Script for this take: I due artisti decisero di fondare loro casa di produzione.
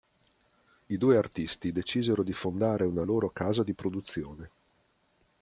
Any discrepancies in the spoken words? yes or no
yes